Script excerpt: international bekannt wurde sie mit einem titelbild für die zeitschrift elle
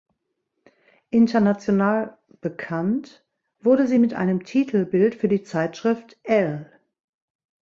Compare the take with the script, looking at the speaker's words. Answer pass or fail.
pass